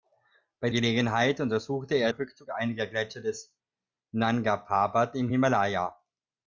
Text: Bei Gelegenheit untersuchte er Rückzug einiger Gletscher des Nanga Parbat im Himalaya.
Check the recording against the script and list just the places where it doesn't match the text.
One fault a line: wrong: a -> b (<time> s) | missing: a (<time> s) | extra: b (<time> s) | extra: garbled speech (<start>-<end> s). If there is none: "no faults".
no faults